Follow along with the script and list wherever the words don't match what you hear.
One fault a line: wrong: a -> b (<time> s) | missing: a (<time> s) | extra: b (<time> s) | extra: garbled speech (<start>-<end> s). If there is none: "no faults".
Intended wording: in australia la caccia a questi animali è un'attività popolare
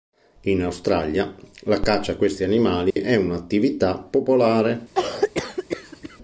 no faults